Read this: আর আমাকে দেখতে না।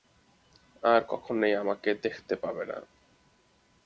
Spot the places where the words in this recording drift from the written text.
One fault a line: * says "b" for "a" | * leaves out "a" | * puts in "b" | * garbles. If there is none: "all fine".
* puts in "কখনোই"
* puts in "পাবে"